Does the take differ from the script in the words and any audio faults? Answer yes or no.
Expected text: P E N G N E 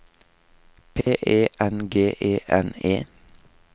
yes